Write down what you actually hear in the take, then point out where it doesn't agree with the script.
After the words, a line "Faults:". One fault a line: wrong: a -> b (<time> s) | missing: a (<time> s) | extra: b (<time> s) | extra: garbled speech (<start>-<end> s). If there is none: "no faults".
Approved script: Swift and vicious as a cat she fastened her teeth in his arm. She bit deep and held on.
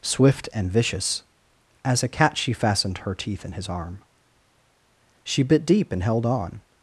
Swift and vicious as a cat she fastened her teeth in his arm. She bit deep and held on.
Faults:
no faults